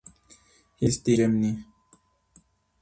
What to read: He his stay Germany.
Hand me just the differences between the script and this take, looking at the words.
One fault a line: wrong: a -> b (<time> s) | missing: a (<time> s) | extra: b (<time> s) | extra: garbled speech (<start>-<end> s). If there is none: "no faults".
no faults